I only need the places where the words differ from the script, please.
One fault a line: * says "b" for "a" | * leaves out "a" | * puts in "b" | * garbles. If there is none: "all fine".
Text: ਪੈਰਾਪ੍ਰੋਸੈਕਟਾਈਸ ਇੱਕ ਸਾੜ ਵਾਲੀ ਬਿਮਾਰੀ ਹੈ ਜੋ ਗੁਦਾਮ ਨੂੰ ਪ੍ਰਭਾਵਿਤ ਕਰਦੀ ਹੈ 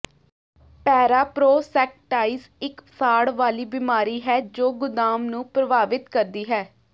all fine